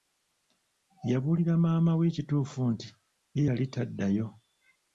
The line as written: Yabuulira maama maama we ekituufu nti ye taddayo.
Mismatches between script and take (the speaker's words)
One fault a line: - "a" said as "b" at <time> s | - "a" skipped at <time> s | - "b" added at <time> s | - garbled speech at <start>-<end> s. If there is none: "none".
- "maama" skipped at 1.9 s
- "yali" added at 3.5 s